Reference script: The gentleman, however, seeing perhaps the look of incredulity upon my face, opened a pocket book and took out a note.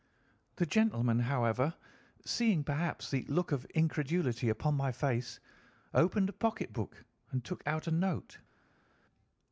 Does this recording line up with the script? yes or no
yes